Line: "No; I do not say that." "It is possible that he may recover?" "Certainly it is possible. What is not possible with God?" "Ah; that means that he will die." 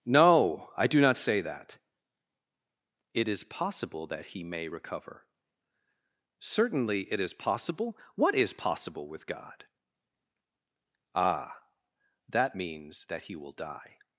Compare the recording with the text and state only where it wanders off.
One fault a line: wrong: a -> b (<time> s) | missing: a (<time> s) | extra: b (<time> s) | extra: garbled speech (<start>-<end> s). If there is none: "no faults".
missing: not (8.5 s)